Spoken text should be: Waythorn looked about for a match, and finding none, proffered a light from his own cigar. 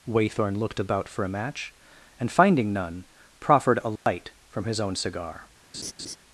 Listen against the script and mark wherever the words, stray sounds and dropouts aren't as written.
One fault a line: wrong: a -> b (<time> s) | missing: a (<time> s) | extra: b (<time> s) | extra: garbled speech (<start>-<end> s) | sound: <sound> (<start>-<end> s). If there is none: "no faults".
sound: dropout (4.0-4.1 s)
sound: laugh (5.7-6.2 s)